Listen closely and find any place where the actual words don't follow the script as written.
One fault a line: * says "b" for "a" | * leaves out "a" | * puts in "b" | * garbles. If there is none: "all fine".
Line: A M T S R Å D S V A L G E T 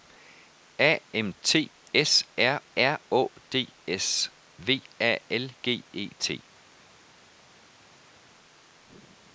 * puts in "R"